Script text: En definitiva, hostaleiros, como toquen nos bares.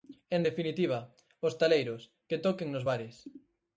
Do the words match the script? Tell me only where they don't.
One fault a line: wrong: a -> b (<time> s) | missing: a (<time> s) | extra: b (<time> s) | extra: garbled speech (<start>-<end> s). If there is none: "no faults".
wrong: como -> que (2.3 s)